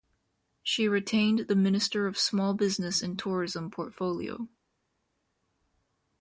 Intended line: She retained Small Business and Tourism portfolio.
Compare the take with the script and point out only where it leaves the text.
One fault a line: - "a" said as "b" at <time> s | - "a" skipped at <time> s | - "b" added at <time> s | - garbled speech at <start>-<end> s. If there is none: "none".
- "the Minister of" added at 1.4 s